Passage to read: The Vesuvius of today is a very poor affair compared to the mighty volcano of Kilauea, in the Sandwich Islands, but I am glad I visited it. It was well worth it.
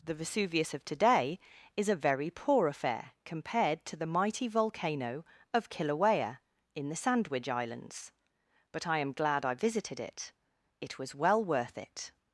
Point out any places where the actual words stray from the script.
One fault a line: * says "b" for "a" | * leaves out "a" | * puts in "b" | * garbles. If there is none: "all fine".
all fine